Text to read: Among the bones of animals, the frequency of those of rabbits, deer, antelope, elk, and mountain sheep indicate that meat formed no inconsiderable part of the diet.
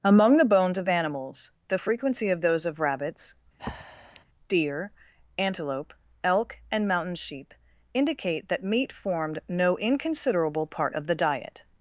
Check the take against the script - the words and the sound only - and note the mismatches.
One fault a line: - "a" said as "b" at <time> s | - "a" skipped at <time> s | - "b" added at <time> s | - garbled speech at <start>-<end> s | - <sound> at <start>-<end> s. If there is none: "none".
- breath at 3.6-4.2 s